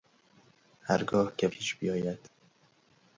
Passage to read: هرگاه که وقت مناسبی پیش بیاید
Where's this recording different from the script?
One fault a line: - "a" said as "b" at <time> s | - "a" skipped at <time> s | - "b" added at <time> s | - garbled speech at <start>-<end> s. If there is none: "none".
- "وقت مناسبی" skipped at 1.5 s